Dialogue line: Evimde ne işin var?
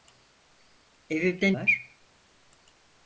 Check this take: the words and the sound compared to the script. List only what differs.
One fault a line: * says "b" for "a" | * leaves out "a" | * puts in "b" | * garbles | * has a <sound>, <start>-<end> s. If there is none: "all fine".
* leaves out "ne işin"